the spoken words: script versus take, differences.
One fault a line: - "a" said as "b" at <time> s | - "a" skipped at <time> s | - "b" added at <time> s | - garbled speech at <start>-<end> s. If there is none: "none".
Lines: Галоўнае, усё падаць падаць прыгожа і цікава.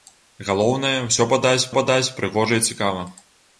none